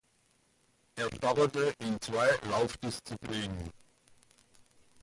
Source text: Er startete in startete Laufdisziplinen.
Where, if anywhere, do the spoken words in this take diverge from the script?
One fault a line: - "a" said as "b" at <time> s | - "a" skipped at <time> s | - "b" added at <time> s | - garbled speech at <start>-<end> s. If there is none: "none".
- "startete" said as "zwei" at 2.0 s